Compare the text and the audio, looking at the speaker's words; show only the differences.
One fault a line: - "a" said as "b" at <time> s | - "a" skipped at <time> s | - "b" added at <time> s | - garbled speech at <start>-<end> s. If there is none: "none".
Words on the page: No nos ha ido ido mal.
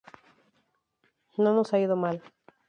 - "ido" skipped at 1.9 s